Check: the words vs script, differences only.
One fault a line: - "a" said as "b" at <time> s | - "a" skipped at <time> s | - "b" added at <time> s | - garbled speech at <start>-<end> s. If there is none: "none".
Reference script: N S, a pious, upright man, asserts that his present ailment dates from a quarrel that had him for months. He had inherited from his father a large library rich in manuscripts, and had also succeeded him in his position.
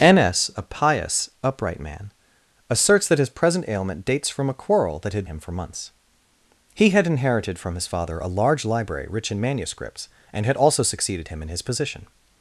none